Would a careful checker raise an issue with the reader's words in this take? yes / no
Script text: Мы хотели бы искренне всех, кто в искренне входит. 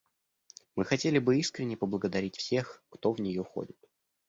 yes